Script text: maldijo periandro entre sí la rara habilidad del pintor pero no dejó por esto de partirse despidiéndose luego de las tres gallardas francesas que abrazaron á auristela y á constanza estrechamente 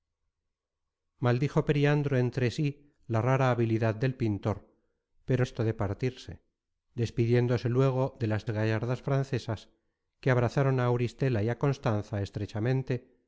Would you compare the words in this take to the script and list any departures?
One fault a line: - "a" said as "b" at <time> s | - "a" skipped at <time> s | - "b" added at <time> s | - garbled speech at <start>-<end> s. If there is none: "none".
- "no dejó por" skipped at 5.5 s
- "tres" skipped at 8.5 s